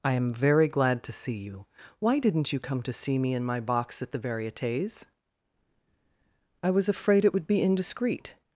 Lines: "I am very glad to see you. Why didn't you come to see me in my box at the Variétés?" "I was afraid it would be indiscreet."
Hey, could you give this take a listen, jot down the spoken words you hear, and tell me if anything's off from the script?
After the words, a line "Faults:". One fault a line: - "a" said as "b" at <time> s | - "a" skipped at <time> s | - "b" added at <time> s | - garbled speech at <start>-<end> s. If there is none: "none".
"I am very glad to see you. Why didn't you come to see me in my box at the Variétés?" "I was afraid it would be indiscreet."
Faults:
none